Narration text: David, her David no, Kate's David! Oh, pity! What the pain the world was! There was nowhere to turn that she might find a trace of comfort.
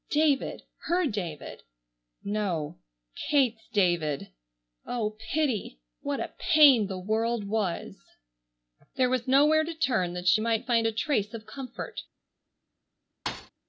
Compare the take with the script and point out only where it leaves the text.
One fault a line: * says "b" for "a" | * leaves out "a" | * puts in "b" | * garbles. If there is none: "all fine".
* says "a" for "the"